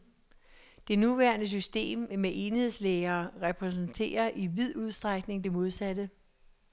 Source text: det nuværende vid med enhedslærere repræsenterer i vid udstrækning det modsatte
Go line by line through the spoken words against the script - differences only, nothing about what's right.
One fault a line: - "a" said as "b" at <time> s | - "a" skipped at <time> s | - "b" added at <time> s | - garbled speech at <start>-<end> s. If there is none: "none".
- "vid" said as "system" at 1.5 s